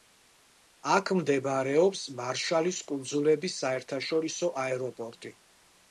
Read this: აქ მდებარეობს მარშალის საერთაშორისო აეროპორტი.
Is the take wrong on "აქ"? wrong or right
right